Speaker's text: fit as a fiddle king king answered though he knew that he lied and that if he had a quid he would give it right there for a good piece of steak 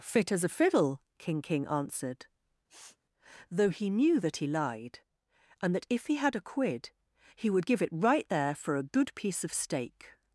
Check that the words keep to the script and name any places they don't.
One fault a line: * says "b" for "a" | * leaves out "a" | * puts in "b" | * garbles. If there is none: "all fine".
all fine